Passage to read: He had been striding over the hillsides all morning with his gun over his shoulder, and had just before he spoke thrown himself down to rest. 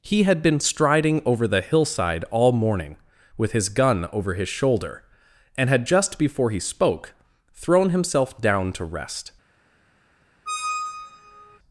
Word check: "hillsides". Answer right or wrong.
wrong